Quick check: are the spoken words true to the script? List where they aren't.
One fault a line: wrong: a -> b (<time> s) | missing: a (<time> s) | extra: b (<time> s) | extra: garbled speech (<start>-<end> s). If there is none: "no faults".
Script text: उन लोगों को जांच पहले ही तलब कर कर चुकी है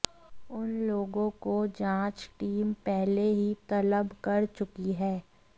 extra: टीम (2.4 s)
missing: कर (4.5 s)